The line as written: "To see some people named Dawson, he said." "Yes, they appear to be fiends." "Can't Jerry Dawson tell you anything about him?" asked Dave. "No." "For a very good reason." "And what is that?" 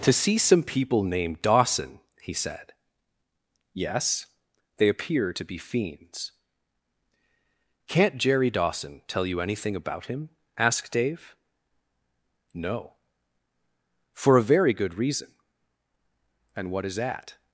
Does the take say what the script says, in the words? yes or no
yes